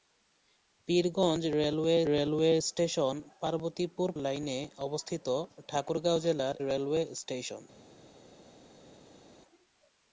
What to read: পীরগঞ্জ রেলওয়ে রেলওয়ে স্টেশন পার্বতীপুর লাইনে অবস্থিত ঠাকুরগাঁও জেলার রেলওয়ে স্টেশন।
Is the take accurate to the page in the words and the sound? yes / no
yes